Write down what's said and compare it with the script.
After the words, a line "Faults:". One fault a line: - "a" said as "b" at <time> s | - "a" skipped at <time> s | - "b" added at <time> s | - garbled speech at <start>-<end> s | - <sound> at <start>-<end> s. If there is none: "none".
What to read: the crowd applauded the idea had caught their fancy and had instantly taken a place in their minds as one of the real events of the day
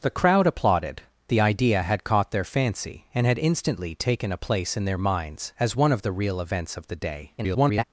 the crowd applauded the idea had caught their fancy and had instantly taken a place in their minds as one of the real events of the day [garbled]
Faults:
- garbled speech at 7.4-7.8 s